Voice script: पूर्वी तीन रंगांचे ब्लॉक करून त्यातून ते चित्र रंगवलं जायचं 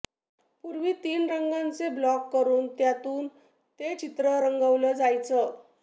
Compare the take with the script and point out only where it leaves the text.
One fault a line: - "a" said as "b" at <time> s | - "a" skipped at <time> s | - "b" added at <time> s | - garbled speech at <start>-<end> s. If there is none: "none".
none